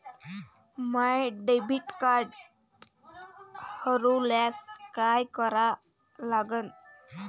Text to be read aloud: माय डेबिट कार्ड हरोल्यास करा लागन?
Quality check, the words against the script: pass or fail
fail